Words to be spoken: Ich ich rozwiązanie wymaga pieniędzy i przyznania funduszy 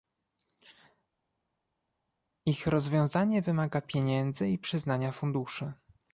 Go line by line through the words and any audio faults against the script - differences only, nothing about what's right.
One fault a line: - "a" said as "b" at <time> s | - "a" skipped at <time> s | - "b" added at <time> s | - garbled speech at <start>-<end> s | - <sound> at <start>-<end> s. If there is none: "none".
- "ich" skipped at 2.7 s